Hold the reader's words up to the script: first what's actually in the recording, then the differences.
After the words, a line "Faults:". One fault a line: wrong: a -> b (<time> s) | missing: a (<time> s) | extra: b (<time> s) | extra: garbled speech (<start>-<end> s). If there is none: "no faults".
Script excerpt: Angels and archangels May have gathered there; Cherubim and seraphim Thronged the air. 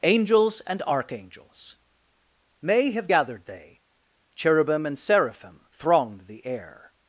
Angels and archangels May have gathered they; Cherubim and seraphim Thronged the air.
Faults:
wrong: there -> they (3.4 s)